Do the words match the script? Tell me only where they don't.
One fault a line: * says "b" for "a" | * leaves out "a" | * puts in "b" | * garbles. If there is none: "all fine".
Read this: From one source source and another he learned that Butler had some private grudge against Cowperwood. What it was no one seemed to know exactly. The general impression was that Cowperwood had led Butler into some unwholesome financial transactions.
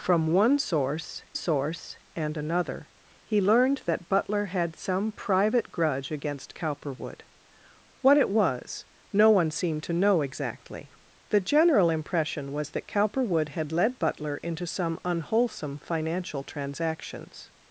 all fine